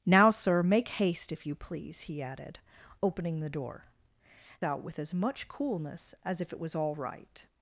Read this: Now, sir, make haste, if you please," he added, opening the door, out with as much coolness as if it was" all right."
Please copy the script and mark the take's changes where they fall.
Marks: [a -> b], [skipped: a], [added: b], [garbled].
Now, sir, make haste, if you please," he added, opening the door, out with as much coolness as if it was" all right."